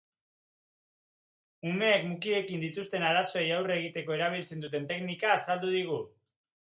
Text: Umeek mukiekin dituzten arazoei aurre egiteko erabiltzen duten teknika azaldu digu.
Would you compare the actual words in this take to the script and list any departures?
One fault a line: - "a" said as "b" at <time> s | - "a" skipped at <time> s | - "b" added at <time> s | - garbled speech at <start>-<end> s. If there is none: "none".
none